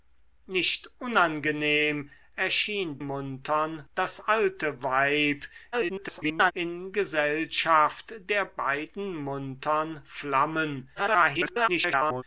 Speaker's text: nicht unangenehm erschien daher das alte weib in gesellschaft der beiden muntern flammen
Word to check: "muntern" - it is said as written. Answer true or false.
true